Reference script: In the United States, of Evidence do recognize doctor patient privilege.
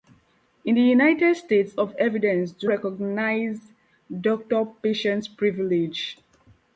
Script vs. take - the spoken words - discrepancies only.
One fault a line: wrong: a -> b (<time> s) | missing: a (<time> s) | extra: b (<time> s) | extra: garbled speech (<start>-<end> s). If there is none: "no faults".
no faults